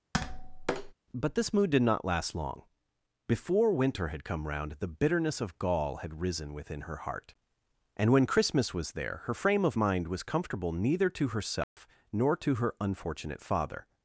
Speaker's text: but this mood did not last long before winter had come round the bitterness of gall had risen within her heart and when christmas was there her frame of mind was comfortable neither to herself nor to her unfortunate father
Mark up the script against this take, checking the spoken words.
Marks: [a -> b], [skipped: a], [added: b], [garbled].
but this mood did not last long before winter had come round the bitterness of gall had risen within her heart and when christmas was there her frame of mind was comfortable neither to herself nor to her unfortunate father